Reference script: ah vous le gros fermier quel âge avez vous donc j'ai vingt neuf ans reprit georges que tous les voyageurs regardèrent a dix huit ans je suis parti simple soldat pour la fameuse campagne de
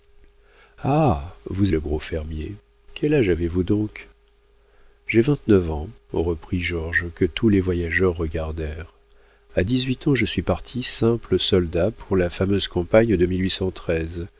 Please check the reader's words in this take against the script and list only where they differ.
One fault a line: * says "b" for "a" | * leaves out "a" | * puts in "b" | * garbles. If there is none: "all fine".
all fine